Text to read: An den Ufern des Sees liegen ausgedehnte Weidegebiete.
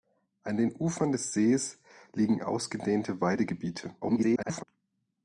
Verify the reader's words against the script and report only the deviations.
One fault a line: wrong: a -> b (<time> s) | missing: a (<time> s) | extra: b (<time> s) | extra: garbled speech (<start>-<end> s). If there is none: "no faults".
extra: garbled speech (4.0-4.6 s)